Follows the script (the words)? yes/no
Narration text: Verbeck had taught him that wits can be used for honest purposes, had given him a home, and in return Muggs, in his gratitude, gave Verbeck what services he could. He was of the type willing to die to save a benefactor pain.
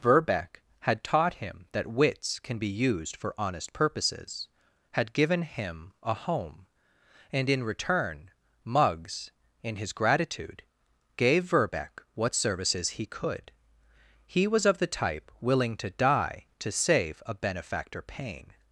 yes